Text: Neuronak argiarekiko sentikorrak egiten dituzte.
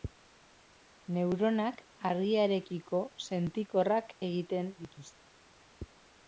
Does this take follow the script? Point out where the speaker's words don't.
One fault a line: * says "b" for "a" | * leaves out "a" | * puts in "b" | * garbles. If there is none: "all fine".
all fine